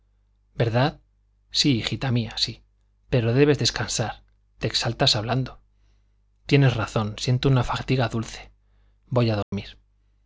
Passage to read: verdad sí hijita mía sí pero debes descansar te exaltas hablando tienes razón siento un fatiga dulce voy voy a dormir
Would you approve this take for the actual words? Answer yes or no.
no